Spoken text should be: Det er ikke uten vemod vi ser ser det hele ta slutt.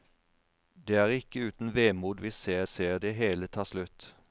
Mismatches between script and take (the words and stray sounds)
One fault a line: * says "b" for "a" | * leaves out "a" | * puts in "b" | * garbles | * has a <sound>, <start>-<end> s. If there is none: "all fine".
all fine